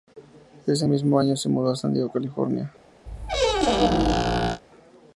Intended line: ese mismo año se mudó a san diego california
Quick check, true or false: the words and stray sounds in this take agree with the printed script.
false